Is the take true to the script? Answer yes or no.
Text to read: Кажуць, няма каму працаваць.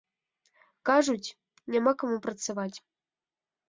yes